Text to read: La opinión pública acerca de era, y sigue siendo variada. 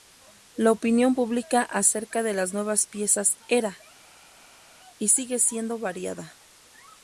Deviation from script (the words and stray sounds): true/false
true